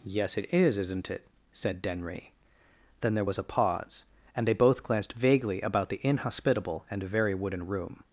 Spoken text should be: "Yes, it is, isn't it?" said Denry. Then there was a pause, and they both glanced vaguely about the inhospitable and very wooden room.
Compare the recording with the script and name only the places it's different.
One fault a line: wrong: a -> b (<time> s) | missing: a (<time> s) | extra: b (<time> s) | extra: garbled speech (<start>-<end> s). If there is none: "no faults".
no faults